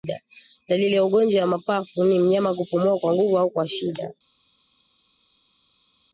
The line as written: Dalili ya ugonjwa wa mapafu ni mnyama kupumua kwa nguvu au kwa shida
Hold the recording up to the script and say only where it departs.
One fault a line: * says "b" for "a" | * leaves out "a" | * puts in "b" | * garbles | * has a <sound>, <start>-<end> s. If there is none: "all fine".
all fine